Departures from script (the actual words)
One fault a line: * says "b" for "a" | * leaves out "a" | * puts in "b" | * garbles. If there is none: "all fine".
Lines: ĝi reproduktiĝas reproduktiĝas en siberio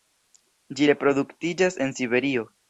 * leaves out "reproduktiĝas"